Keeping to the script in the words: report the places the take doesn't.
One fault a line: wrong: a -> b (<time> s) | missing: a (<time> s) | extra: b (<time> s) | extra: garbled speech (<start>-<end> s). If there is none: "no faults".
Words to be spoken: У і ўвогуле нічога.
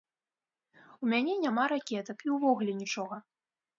extra: мяне няма ракетак (1.1 s)